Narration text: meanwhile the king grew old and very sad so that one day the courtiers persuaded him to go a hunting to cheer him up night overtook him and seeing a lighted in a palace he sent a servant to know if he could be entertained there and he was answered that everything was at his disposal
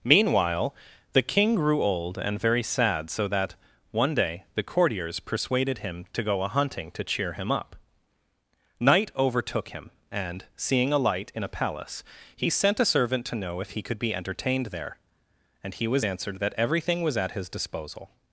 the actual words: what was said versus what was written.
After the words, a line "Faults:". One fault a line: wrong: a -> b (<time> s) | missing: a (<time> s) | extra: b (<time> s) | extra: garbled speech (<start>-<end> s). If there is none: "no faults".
meanwhile the king grew old and very sad so that one day the courtiers persuaded him to go a hunting to cheer him up night overtook him and seeing a light in a palace he sent a servant to know if he could be entertained there and he was answered that everything was at his disposal
Faults:
wrong: lighted -> light (11.0 s)